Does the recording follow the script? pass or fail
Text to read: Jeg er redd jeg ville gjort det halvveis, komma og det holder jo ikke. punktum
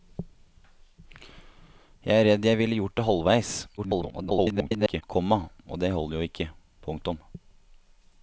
fail